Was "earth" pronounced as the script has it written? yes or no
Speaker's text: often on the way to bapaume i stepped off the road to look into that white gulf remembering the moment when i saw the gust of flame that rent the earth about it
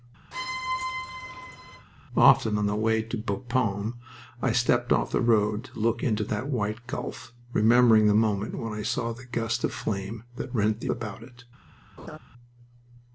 no